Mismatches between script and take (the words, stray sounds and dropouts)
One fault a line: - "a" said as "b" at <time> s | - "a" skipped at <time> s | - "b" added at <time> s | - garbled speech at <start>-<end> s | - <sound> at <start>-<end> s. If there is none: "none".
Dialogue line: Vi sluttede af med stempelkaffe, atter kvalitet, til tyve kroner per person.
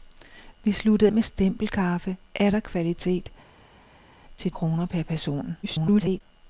- "af" skipped at 1.1 s
- "tyve" skipped at 4.5 s
- garbled speech at 5.6-6.2 s